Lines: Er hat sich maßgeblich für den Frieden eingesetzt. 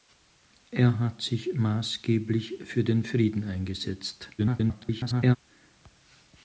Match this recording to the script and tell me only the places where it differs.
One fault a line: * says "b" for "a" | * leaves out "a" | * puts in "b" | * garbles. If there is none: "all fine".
* garbles